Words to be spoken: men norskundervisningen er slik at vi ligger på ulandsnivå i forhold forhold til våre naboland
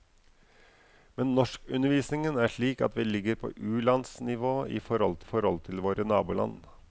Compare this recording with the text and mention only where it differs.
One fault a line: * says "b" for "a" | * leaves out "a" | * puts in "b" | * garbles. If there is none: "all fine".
all fine